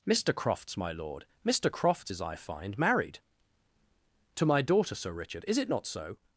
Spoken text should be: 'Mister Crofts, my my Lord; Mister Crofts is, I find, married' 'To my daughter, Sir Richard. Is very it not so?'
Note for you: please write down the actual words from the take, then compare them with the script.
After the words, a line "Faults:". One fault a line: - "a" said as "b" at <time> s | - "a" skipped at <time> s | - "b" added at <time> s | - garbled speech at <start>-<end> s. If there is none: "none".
'Mister Crofts, my Lord; Mister Crofts is, I find, married' 'To my daughter, Sir Richard. Is it not so?'
Faults:
- "my" skipped at 0.9 s
- "very" skipped at 5.6 s